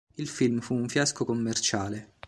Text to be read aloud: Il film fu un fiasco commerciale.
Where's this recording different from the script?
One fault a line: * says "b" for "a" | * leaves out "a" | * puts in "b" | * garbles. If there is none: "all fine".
all fine